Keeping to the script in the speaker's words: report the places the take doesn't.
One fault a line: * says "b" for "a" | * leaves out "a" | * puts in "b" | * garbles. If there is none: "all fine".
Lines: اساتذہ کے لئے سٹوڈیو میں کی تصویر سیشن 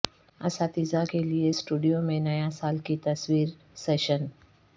* puts in "نیا سال"